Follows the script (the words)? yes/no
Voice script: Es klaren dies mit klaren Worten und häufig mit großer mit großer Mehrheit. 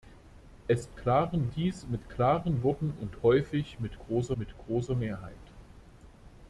yes